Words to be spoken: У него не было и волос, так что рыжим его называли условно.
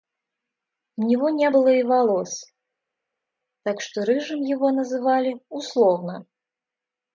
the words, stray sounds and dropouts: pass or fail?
pass